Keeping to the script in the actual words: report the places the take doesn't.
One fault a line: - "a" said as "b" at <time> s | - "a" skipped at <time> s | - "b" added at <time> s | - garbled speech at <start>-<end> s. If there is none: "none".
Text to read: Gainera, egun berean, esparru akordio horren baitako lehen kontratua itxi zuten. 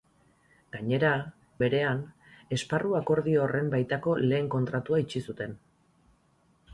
- "egun" skipped at 1.1 s